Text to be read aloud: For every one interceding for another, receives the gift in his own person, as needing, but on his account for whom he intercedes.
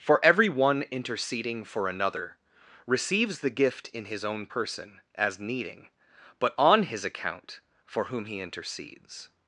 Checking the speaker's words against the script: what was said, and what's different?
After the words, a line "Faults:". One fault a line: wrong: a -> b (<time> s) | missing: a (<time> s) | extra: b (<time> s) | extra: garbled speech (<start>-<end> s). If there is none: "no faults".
For every one interceding for another, receives the gift in his own person, as needing, but on his account for whom he intercedes.
Faults:
no faults